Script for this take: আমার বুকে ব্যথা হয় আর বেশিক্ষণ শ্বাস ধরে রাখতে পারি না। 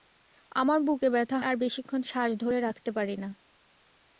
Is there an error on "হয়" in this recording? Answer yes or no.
yes